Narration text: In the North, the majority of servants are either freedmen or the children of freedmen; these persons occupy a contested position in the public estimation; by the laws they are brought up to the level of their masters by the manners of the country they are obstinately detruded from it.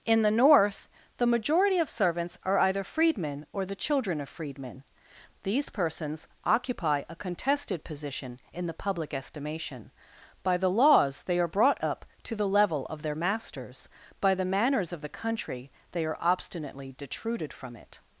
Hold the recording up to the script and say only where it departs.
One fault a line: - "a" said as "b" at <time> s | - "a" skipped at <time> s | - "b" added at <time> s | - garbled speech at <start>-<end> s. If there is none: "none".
none